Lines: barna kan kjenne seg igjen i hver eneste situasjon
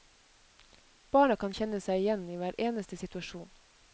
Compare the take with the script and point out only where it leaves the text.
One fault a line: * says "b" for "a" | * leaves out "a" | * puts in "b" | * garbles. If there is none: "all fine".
all fine